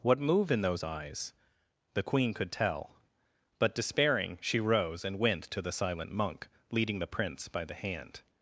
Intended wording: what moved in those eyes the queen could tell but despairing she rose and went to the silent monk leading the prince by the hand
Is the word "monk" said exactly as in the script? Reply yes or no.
yes